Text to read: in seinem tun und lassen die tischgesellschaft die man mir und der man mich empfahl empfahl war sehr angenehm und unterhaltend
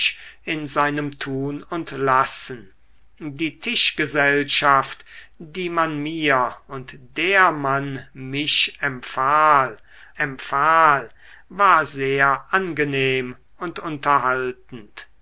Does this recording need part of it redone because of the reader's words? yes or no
no